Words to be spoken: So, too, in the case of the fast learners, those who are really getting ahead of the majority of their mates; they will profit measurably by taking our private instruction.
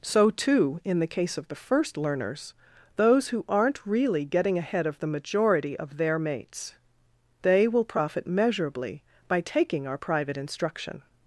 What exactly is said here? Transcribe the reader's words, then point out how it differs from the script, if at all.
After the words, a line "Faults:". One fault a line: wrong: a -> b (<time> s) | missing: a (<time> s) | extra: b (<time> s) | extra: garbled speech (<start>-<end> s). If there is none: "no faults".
So, too, in the case of the first learners, those who aren't really getting ahead of the majority of their mates; they will profit measurably by taking our private instruction.
Faults:
wrong: fast -> first (1.6 s)
wrong: are -> aren't (3.5 s)